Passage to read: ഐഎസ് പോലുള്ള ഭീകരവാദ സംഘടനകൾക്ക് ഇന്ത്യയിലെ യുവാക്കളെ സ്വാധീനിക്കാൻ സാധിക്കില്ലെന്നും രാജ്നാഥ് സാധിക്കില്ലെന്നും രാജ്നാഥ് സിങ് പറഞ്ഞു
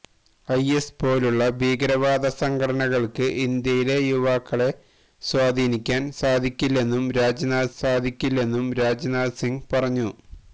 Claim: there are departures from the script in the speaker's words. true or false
false